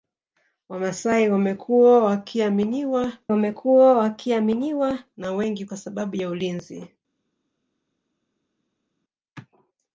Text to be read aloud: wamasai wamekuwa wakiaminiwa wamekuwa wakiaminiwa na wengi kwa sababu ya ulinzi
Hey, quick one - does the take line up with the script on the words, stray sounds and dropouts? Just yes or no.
yes